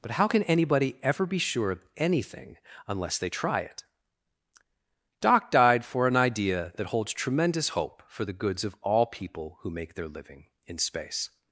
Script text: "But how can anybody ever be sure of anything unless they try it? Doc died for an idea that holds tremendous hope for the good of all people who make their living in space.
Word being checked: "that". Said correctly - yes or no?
yes